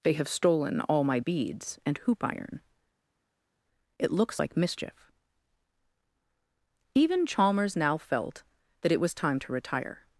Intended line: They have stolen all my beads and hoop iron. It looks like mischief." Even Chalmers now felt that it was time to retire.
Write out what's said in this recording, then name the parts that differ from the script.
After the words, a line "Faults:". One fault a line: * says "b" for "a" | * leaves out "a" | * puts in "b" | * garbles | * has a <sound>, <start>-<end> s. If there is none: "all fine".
They have stolen all my beads and hoop iron. It looks like mischief." Even Chalmers now felt that it was time to retire.
Faults:
all fine